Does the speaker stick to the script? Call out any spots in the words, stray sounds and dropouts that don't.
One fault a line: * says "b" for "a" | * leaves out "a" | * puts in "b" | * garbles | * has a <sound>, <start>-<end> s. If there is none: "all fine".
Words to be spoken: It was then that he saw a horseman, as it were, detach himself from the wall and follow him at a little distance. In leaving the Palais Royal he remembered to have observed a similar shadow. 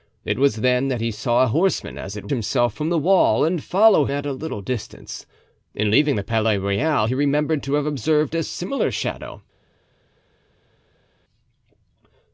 * leaves out "were detach"
* leaves out "him"